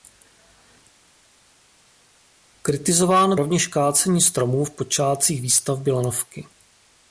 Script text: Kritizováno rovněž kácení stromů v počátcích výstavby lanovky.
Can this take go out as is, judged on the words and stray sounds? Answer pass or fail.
pass